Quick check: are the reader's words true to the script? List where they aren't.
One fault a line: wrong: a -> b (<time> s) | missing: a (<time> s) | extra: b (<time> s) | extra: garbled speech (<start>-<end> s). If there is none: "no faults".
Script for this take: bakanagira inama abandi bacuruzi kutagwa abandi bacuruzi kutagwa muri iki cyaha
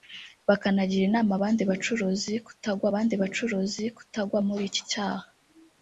no faults